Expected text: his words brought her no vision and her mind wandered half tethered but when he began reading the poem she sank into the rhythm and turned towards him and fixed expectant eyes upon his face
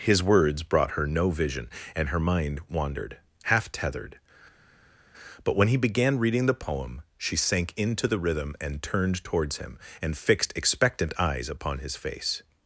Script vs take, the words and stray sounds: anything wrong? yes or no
no